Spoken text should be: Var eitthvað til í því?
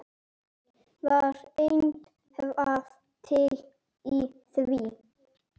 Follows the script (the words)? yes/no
yes